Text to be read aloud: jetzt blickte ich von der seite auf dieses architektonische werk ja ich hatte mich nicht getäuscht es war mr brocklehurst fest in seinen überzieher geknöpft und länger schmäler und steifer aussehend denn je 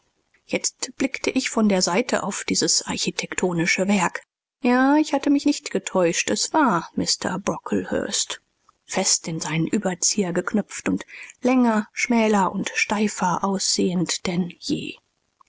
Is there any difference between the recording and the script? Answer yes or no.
no